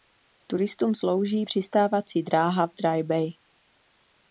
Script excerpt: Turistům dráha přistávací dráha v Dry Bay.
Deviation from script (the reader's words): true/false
true